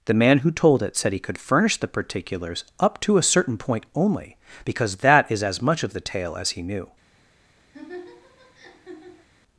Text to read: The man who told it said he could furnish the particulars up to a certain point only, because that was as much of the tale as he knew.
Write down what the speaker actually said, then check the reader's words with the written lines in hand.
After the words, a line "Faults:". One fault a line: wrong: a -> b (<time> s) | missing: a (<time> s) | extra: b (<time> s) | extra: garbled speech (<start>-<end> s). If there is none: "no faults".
The man who told it said he could furnish the particulars up to a certain point only, because that is as much of the tale as he knew.
Faults:
wrong: was -> is (5.3 s)